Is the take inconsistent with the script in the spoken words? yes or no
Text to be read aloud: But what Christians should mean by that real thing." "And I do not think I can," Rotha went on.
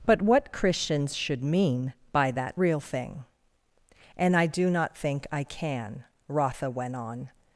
no